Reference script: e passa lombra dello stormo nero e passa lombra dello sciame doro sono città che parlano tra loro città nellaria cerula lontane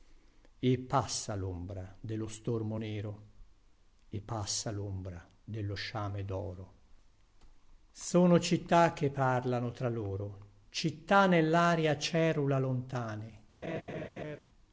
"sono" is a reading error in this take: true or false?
false